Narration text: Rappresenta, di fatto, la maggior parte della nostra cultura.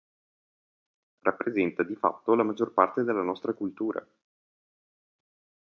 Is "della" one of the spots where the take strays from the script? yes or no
no